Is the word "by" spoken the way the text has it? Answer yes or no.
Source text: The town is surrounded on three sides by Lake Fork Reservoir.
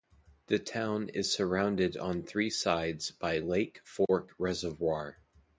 yes